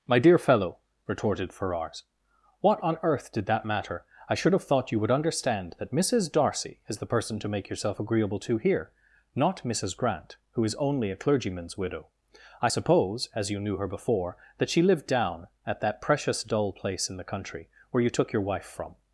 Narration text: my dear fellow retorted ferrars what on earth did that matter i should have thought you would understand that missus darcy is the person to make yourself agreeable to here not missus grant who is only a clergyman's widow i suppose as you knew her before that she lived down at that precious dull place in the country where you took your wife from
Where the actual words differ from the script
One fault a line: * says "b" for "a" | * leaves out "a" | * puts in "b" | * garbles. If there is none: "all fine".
all fine